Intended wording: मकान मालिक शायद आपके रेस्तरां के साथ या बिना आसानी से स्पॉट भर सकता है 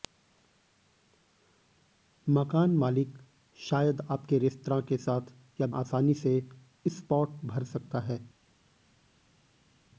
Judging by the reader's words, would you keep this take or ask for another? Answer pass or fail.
fail